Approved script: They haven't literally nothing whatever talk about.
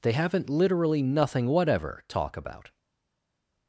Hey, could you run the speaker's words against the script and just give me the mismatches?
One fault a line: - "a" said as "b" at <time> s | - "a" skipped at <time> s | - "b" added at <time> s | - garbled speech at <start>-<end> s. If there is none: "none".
none